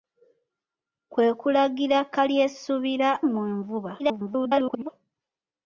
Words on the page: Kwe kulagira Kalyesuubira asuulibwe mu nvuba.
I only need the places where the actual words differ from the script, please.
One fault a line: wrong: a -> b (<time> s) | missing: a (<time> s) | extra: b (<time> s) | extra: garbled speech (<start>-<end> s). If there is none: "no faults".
missing: asuulibwe (3.1 s)
extra: garbled speech (4.0-4.9 s)